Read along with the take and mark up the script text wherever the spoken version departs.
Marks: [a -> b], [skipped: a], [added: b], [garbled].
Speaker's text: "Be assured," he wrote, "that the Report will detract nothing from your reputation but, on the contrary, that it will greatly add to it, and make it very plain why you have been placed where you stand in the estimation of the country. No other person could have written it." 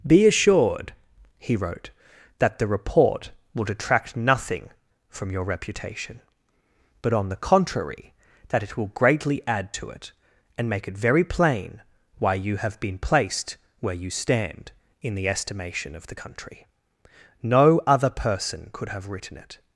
"Be assured," he wrote, "that the Report will detract nothing from your reputation but, on the contrary, that it will greatly add to it, and make it very plain why you have been placed where you stand in the estimation of the country. No other person could have written it."